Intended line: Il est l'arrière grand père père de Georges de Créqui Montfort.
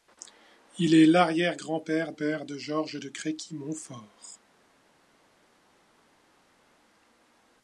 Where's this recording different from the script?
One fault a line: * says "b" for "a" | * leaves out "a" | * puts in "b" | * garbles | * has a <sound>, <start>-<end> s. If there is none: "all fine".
all fine